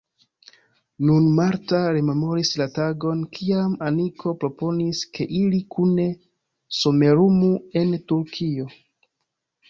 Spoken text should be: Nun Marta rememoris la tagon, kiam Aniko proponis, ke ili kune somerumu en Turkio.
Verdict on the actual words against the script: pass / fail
pass